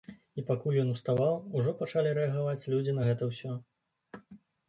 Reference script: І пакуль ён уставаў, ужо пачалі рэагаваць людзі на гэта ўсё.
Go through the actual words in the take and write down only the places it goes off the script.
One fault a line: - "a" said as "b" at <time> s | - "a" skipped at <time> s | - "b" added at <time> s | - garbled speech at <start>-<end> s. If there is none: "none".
none